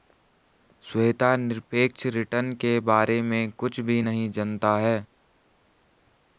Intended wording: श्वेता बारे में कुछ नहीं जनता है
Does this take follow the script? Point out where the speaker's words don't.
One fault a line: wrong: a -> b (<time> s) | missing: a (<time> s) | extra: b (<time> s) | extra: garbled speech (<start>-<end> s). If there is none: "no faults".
extra: निरपेक्ष रिटर्न के (1.4 s)
extra: भी (3.8 s)